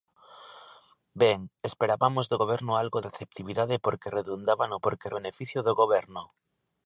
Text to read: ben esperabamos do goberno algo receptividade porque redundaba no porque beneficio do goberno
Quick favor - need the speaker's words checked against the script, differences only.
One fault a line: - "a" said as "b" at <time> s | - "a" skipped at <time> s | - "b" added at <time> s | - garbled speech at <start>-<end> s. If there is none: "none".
none